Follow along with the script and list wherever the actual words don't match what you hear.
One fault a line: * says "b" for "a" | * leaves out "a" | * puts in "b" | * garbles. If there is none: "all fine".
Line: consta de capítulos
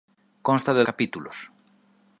all fine